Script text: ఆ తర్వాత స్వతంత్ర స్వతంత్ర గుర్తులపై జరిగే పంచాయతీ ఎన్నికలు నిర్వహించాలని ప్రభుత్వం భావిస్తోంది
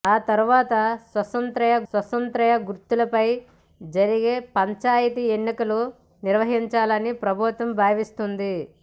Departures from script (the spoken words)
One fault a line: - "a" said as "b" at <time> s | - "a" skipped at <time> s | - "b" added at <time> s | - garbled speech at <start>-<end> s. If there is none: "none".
none